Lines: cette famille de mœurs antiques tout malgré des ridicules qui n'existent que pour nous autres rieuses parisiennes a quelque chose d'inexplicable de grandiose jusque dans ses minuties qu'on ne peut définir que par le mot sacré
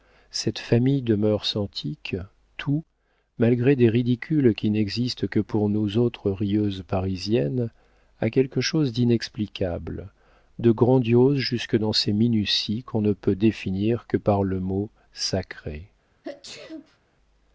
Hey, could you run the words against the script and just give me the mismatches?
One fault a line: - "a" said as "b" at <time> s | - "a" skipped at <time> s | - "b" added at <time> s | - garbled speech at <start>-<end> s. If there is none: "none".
none